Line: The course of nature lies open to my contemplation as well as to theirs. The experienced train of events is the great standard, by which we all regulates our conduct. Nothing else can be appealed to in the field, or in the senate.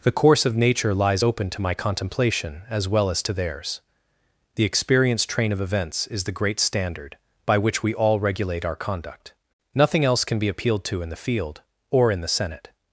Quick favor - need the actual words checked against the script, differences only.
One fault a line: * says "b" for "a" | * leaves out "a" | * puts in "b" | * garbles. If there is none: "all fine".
* says "regulate" for "regulates"